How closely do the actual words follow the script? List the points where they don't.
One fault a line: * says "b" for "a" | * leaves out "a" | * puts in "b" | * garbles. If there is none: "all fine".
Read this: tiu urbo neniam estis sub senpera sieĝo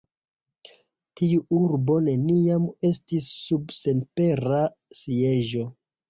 all fine